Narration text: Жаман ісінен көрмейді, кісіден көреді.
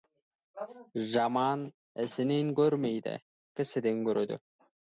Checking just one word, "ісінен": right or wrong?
right